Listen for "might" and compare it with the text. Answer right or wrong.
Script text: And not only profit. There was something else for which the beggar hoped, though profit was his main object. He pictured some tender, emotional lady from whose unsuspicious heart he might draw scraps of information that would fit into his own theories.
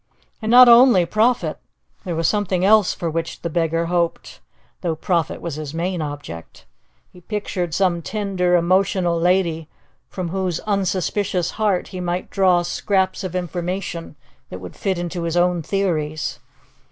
right